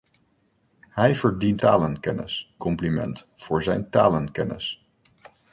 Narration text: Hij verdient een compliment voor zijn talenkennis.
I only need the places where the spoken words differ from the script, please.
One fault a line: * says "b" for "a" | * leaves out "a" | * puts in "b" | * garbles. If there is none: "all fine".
* says "talenkennis" for "een"